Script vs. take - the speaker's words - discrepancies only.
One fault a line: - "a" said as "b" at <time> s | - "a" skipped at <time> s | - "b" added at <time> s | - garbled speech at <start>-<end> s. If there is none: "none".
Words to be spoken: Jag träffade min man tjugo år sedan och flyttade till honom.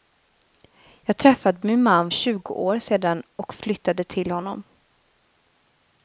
none